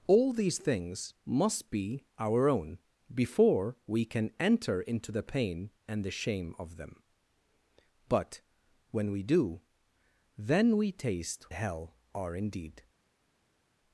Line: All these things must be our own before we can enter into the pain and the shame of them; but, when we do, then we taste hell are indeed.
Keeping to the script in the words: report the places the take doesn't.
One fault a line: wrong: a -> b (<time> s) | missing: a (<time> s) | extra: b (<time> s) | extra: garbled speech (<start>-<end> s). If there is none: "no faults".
no faults